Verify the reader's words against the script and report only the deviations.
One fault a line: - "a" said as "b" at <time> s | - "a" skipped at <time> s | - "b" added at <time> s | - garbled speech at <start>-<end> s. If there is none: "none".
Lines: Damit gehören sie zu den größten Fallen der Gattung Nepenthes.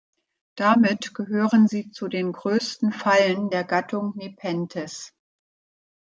none